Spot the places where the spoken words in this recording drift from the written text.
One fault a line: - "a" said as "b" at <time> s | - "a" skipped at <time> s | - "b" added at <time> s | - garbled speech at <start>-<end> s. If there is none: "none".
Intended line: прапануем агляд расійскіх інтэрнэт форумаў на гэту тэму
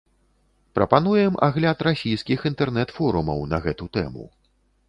none